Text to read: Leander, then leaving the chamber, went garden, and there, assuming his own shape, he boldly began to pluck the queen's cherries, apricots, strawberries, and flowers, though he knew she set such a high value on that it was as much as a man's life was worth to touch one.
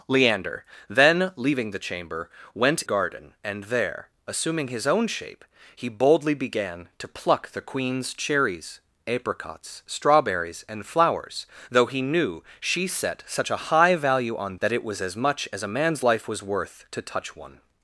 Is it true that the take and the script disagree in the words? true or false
false